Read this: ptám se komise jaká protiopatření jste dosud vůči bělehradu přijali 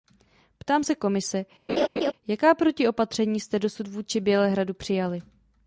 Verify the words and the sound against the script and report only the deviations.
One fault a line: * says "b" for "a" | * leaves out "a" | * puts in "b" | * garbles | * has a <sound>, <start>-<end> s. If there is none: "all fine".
* has a laugh, 1.7-2.1 s